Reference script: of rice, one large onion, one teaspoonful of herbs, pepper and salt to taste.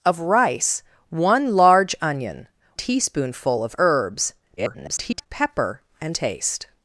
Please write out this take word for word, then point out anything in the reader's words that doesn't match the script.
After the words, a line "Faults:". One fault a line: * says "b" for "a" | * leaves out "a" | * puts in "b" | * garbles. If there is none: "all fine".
of rice, one large onion, teaspoonful of herbs, [garbled] pepper and taste.
Faults:
* leaves out "one"
* garbles
* leaves out "salt to"